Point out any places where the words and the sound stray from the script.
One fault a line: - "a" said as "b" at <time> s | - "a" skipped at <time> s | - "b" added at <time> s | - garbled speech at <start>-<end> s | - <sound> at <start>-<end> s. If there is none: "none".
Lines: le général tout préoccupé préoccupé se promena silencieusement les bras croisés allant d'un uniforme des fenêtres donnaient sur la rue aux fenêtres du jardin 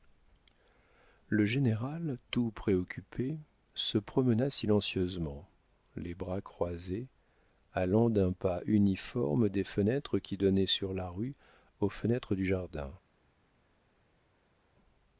- "préoccupé" skipped at 3.4 s
- "pas" added at 8.3 s
- "qui" added at 10.2 s